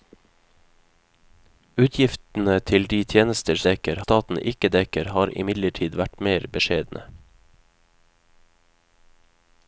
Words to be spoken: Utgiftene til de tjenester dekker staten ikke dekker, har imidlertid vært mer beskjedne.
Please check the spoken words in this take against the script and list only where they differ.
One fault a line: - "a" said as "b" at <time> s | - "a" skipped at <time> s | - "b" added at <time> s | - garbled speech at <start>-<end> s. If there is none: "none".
none